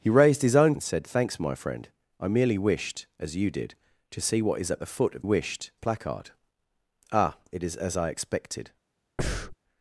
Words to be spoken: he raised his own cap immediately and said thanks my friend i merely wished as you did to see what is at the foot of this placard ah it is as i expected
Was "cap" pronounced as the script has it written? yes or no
no